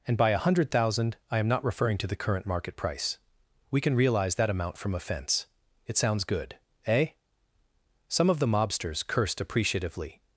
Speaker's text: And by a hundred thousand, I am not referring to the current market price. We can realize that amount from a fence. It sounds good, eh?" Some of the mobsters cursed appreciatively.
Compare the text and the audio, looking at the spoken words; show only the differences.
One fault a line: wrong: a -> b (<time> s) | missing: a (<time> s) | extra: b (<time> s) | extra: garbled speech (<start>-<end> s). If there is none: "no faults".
no faults